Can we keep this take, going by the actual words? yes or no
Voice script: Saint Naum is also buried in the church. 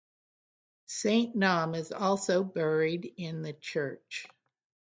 yes